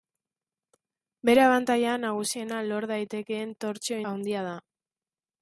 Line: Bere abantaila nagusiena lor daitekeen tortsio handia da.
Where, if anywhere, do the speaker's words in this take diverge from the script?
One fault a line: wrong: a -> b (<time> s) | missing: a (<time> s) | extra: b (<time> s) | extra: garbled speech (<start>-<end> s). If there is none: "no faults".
no faults